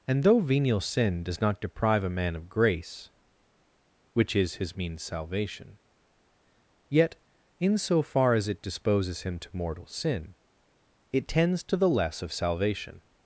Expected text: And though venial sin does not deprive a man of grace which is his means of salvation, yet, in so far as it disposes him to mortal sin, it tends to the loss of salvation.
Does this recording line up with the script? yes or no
no